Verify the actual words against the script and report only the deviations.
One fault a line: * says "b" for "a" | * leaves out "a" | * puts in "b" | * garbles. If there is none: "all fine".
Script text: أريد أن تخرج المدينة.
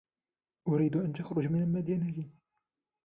* puts in "من"